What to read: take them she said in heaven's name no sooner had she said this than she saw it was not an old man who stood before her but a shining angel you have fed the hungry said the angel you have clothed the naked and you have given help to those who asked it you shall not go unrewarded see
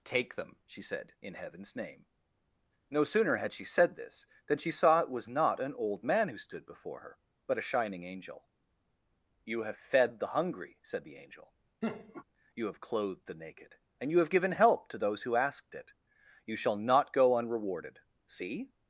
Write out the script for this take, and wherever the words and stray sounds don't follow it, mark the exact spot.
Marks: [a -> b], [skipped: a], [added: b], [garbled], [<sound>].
take them she said in heaven's name no sooner had she said this than she saw it was not an old man who stood before her but a shining angel you have fed the hungry said the angel [laugh] you have clothed the naked and you have given help to those who asked it you shall not go unrewarded see